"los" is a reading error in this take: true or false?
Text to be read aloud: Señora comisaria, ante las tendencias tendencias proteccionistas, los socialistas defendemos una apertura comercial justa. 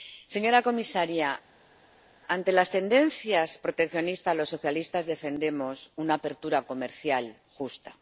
false